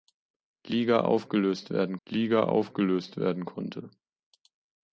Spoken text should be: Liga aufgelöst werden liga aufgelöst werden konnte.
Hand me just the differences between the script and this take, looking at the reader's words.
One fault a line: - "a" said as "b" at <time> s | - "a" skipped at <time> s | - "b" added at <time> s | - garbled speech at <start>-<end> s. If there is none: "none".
none